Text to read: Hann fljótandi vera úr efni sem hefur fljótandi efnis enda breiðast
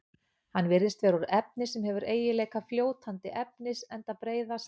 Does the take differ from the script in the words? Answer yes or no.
yes